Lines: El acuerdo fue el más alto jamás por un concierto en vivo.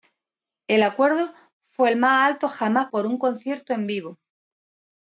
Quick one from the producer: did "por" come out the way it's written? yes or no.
yes